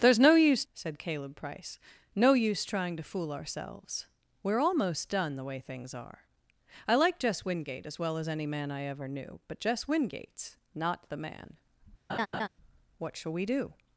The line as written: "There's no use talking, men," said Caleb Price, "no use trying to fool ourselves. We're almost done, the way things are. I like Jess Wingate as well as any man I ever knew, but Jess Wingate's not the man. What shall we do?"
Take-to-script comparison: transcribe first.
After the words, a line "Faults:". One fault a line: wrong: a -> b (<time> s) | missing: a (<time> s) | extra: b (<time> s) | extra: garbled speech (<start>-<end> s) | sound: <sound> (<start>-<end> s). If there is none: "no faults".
"There's no use," said Caleb Price, "no use trying to fool ourselves. We're almost done, the way things are. I like Jess Wingate as well as any man I ever knew, but Jess Wingate's not the man. What shall we do?"
Faults:
missing: talking men (0.7 s)
sound: laugh (12.1-12.5 s)